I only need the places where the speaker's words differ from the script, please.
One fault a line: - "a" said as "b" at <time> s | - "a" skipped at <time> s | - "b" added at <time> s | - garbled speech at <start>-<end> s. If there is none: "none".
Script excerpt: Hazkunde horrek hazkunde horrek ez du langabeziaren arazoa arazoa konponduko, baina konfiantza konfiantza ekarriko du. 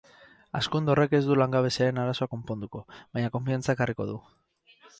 - "hazkunde horrek" skipped at 1.1 s
- "arazoa" skipped at 2.3 s
- "konfiantza" skipped at 3.8 s